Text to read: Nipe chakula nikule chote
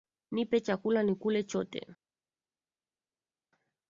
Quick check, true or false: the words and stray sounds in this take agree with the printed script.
true